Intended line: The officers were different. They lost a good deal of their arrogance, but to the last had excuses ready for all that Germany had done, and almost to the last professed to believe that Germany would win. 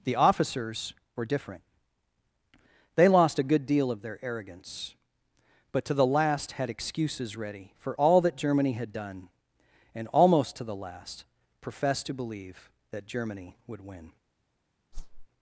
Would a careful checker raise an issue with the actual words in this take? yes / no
no